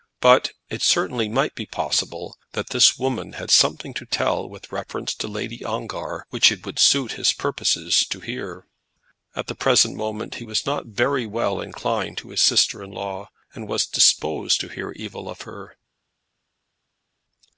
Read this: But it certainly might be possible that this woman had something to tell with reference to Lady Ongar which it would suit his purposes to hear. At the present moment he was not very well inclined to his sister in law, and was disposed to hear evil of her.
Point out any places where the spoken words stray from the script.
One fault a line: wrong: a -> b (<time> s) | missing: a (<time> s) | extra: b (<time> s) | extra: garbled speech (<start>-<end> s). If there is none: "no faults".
no faults